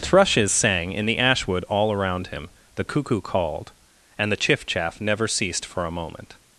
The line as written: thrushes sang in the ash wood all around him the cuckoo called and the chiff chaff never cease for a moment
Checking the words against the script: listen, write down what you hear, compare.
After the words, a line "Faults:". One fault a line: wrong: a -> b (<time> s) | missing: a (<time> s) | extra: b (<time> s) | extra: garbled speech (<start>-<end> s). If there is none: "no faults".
thrushes sang in the ash wood all around him the cuckoo called and the chiff chaff never ceased for a moment
Faults:
wrong: cease -> ceased (5.3 s)